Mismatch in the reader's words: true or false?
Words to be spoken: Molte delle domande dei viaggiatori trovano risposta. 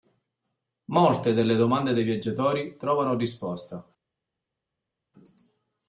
false